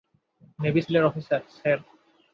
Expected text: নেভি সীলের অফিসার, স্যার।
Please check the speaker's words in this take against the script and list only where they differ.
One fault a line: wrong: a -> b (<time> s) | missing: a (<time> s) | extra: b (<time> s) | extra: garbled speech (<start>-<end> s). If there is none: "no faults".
no faults